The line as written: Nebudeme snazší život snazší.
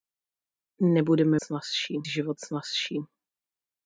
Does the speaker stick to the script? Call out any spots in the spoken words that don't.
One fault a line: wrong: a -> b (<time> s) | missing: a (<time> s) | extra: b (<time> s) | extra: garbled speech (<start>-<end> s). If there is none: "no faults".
no faults